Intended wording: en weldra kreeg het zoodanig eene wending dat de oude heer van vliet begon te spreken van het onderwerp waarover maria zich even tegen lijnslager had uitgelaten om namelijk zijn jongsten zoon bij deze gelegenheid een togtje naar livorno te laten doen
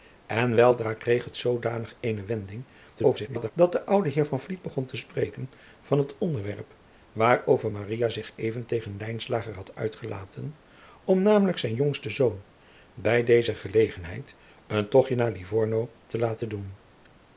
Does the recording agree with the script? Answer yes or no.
no